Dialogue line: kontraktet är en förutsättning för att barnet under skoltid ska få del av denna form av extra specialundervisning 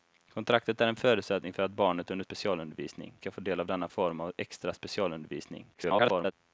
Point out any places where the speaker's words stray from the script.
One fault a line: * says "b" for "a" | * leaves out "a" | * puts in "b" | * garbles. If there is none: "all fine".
* says "specialundervisning" for "skoltid"
* garbles